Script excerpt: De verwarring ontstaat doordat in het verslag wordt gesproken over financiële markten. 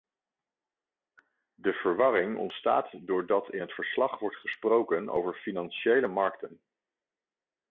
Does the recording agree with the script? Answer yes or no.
yes